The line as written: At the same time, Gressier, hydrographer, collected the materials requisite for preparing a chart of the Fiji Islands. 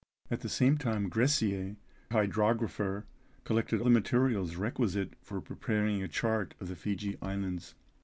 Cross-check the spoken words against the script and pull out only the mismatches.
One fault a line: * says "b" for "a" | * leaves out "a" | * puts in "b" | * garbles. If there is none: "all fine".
all fine